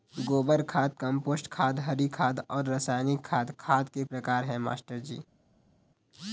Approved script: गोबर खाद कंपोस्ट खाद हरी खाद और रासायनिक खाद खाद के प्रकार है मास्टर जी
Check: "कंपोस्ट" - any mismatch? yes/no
no